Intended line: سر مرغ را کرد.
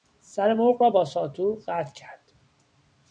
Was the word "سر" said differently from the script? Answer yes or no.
no